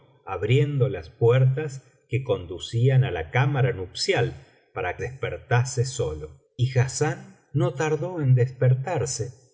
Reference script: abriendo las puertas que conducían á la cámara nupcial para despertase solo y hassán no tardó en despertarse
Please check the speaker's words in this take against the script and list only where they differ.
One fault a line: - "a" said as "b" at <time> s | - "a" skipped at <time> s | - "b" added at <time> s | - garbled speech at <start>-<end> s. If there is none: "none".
none